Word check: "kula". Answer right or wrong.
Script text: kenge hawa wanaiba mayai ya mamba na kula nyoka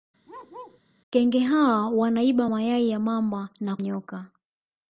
wrong